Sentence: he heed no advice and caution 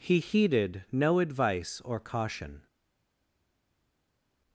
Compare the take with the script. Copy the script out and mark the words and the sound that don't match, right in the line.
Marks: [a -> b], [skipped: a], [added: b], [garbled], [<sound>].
he [heed -> heeded] no advice [and -> or] caution